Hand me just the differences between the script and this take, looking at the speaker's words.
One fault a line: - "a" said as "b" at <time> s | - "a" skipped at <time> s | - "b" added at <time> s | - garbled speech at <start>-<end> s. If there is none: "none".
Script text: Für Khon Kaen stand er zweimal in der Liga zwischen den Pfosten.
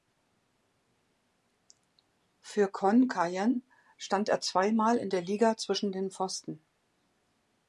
none